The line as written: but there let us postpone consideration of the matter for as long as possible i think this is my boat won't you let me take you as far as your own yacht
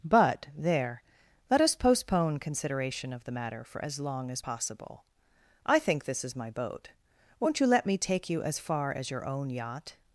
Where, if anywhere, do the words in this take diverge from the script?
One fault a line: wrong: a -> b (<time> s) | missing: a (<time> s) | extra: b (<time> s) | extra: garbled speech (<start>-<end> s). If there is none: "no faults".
no faults